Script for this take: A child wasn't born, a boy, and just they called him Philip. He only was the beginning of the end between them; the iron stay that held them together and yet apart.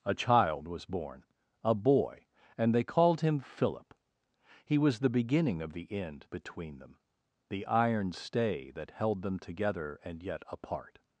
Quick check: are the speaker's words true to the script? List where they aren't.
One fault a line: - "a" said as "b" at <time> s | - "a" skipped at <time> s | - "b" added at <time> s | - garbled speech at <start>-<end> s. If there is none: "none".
- "wasn't" said as "was" at 0.7 s
- "just" skipped at 2.7 s
- "only" skipped at 4.8 s